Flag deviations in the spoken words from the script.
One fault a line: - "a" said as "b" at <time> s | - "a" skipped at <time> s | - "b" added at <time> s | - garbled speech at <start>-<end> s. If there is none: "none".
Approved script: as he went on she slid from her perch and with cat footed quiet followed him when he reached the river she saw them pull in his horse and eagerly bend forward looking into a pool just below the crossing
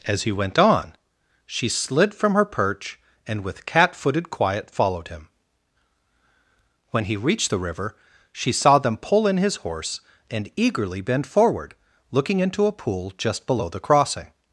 none